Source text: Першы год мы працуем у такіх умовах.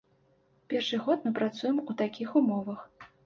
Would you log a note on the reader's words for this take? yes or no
no